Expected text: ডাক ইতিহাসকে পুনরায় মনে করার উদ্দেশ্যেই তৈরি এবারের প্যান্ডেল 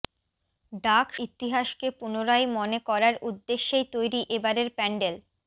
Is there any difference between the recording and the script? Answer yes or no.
no